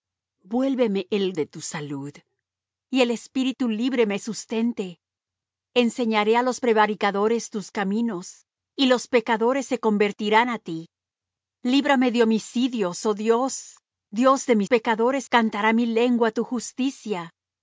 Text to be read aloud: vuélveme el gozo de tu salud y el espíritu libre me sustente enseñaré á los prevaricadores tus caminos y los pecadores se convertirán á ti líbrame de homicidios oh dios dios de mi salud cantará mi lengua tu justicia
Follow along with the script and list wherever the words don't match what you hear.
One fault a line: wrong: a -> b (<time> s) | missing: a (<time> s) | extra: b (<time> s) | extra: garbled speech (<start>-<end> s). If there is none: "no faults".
missing: gozo (1.4 s)
wrong: salud -> pecadores (14.7 s)